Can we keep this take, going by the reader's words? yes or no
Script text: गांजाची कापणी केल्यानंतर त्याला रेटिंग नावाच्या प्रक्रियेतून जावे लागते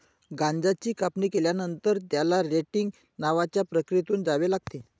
yes